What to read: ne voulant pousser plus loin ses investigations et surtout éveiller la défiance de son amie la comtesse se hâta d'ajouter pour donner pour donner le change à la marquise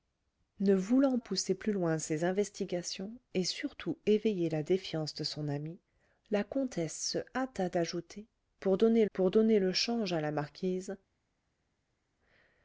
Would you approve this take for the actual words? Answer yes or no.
yes